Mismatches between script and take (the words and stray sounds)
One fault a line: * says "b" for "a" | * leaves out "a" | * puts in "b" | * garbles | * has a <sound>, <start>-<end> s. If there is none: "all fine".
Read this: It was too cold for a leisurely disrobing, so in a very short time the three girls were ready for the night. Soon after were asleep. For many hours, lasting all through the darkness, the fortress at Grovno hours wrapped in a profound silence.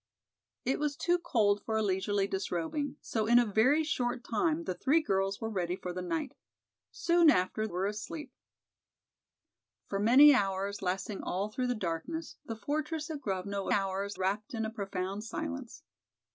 all fine